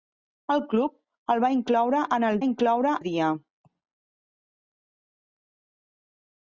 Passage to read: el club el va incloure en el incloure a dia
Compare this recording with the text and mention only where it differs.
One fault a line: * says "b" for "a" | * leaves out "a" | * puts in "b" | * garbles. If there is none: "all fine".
all fine